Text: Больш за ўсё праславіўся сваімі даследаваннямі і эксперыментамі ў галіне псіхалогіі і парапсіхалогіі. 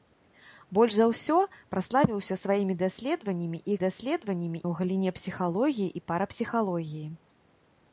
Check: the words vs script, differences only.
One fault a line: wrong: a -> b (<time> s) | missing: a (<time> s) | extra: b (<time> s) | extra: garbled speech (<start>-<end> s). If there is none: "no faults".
wrong: эксперыментамі -> даследаваннямі (3.8 s)